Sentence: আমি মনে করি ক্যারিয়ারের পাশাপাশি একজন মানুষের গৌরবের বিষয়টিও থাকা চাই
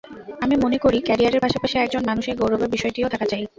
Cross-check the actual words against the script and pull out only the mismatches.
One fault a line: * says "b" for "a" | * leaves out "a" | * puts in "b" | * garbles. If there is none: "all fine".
all fine